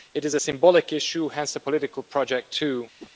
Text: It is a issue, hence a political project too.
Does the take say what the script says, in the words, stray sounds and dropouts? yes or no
no